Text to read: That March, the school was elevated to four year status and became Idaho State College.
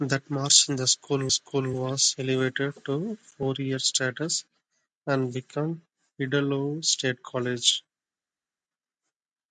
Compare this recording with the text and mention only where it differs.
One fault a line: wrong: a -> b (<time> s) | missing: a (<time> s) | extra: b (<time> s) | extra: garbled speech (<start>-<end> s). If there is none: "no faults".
extra: school (1.3 s)